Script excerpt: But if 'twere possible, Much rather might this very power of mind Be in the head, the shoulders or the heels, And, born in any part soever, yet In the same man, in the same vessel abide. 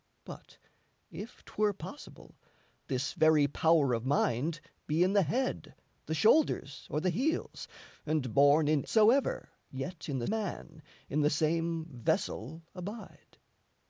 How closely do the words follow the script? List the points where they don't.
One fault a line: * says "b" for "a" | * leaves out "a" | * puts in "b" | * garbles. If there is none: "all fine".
* leaves out "Much rather might"
* leaves out "any part"
* leaves out "same"